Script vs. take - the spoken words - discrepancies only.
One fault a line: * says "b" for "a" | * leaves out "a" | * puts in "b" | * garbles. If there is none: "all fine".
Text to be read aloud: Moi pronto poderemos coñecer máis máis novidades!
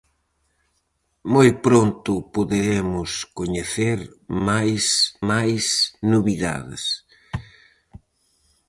all fine